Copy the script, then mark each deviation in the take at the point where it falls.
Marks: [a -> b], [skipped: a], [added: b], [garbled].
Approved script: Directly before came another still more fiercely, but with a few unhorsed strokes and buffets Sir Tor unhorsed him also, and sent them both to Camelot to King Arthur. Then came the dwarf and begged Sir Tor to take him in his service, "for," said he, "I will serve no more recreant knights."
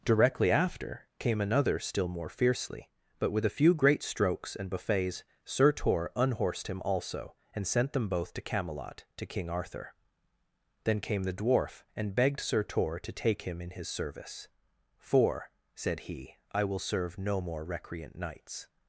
Directly [before -> after] came another still more fiercely, but with a few [unhorsed -> great] strokes and buffets Sir Tor unhorsed him also, and sent them both to Camelot to King Arthur. Then came the dwarf and begged Sir Tor to take him in his service, "for," said he, "I will serve no more recreant knights."